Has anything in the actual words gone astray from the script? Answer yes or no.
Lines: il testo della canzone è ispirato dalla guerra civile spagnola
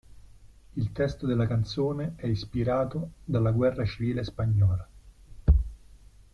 no